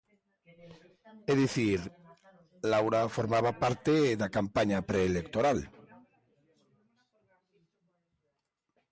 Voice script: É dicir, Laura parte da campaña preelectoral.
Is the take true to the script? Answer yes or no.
no